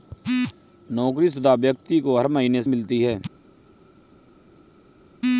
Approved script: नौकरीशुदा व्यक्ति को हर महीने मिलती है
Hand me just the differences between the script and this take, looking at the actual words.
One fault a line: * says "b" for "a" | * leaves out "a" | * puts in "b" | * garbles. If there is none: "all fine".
all fine